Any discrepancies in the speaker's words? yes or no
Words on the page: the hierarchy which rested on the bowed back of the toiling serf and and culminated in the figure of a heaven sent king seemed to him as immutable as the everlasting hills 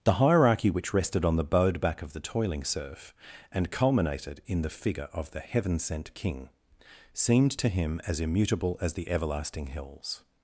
yes